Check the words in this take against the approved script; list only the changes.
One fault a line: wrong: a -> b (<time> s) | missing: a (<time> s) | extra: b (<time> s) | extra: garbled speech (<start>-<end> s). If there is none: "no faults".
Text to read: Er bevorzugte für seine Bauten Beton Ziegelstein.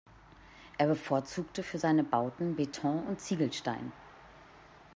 extra: und (3.1 s)